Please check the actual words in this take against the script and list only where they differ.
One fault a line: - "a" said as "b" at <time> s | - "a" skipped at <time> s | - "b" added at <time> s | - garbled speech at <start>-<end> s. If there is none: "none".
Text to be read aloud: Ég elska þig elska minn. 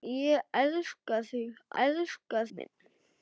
none